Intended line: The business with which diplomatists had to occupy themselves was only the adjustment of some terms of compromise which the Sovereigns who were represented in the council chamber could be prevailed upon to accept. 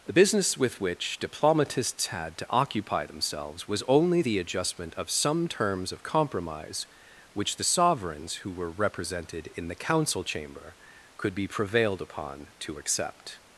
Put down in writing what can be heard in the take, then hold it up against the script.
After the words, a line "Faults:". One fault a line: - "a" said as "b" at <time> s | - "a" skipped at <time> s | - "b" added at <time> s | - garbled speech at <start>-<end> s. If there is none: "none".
The business with which diplomatists had to occupy themselves was only the adjustment of some terms of compromise which the Sovereigns who were represented in the council chamber could be prevailed upon to accept.
Faults:
none